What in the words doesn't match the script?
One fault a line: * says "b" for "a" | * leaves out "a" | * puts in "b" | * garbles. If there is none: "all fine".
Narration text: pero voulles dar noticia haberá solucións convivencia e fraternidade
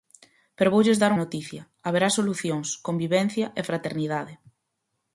all fine